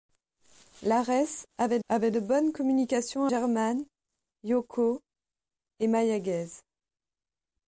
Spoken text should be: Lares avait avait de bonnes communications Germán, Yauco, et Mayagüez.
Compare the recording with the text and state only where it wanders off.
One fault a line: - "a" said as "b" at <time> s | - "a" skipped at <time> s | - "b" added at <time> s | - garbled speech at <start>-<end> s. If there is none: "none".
none